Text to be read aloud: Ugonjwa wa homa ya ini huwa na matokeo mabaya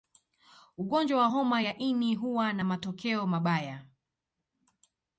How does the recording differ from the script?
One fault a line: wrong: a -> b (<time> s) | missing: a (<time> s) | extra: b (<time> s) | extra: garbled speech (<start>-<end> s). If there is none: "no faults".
no faults